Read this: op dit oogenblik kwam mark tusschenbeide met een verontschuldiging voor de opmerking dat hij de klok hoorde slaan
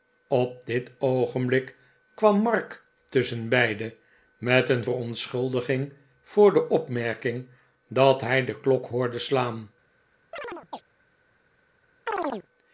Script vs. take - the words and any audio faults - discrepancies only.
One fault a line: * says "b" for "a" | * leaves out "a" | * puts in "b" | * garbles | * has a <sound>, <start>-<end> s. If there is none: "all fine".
* has a chirp, 10.3-10.8 s
* has a chirp, 12.1-12.5 s